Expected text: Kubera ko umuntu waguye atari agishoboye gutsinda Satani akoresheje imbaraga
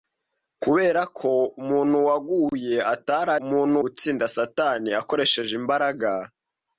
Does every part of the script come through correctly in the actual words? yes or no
no